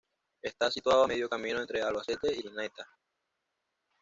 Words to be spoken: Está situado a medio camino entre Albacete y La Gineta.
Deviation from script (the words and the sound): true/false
true